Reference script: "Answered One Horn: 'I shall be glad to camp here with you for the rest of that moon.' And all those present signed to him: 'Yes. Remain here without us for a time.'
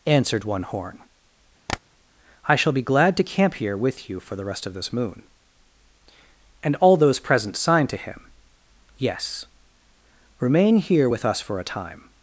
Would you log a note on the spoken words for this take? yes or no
yes